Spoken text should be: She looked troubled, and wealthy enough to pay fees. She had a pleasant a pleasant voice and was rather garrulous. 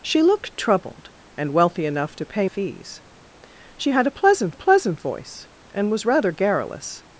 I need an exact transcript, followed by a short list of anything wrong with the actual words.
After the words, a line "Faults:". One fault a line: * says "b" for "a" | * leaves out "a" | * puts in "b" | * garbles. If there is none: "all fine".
She looked troubled, and wealthy enough to pay fees. She had a pleasant a pleasant voice and was rather garrulous.
Faults:
all fine